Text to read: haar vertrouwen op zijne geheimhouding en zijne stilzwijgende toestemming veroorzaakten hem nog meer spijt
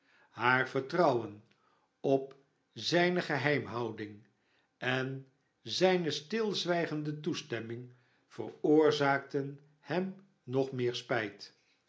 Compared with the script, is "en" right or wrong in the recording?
right